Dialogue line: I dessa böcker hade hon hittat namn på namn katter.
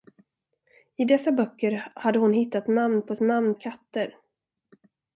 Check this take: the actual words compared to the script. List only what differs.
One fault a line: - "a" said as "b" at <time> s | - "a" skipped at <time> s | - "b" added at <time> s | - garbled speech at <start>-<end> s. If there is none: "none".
none